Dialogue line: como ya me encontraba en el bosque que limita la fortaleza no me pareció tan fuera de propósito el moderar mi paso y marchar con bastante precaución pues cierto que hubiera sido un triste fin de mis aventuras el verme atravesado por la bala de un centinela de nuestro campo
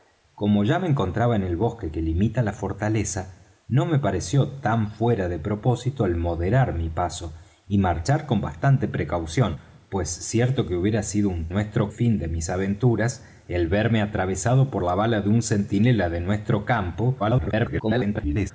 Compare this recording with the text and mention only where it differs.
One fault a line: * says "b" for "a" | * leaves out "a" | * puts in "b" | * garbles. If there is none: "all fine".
* says "nuestro" for "triste"
* garbles